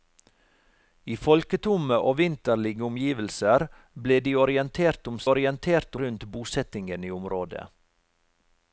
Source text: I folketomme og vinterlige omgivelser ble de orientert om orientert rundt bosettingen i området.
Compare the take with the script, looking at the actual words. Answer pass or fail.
pass